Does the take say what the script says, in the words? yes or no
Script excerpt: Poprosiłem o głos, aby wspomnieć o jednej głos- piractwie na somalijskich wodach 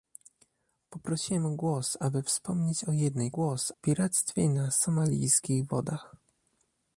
yes